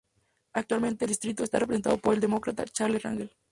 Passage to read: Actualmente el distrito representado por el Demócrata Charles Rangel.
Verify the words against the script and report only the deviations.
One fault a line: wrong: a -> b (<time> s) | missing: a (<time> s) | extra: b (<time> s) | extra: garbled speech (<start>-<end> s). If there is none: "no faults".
extra: está (1.4 s)